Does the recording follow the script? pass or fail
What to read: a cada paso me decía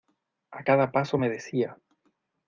pass